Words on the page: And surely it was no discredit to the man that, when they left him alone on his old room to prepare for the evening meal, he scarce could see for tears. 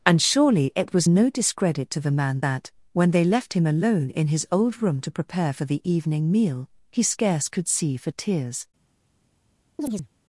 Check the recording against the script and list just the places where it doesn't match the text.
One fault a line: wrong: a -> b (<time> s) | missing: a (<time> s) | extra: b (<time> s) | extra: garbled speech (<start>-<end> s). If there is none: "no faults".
wrong: on -> in (4.1 s)